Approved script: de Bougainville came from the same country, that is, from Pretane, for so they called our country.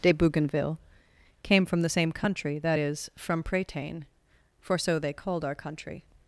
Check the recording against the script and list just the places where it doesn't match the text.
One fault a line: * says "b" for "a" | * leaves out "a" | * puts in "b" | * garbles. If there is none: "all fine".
all fine